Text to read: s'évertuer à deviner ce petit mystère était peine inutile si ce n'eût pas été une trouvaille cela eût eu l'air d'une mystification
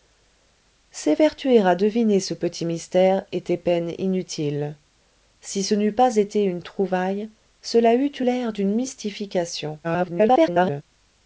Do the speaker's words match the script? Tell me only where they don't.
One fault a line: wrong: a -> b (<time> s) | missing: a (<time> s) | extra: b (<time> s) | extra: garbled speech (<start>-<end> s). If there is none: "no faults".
extra: garbled speech (9.8-10.8 s)